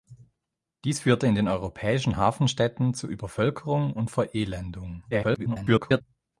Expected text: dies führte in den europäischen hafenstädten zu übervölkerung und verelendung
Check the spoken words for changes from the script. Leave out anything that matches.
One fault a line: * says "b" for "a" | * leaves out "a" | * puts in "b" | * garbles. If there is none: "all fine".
* garbles